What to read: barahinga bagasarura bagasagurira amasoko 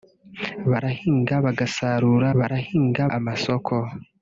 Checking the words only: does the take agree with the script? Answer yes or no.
no